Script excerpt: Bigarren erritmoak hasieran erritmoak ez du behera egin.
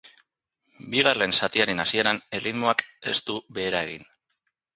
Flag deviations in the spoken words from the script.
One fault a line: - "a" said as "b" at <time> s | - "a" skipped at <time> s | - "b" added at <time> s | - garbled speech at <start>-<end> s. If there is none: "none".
- "erritmoak" said as "zatiaren" at 1.4 s